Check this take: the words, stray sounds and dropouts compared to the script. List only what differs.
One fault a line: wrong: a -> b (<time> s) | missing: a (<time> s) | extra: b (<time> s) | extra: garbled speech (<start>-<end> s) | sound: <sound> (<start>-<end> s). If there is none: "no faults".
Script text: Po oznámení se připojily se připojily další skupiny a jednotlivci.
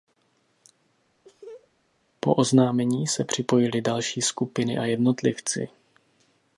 sound: laugh (1.2-1.7 s)
missing: se připojily (3.8 s)